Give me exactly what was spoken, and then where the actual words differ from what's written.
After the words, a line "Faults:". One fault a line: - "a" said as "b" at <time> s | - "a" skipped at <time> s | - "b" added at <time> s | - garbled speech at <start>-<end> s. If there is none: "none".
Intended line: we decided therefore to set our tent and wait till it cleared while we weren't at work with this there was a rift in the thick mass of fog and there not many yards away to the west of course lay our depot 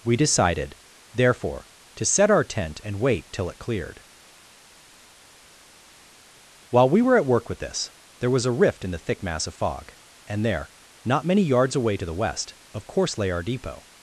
we decided therefore to set our tent and wait till it cleared while we were at work with this there was a rift in the thick mass of fog and there not many yards away to the west of course lay our depot
Faults:
- "weren't" said as "were" at 7.0 s